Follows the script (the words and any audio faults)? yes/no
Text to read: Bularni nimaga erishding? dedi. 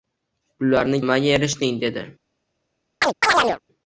no